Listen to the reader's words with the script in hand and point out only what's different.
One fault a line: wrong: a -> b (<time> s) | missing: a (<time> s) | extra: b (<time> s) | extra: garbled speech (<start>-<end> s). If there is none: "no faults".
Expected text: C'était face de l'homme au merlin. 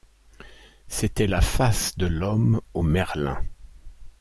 extra: la (1.3 s)